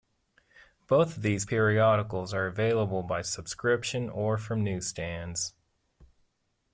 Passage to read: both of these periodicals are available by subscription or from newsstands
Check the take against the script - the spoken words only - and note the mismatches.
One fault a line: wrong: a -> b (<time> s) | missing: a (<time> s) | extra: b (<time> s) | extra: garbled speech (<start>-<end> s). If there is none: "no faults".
no faults